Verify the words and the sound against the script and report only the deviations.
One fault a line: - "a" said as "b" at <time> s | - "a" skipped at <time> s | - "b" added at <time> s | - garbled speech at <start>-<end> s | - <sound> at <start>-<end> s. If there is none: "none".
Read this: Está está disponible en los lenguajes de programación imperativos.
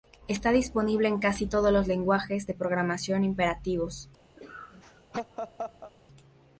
- "está" skipped at 0.5 s
- "casi todos" added at 1.2 s
- laugh at 4.4-5.9 s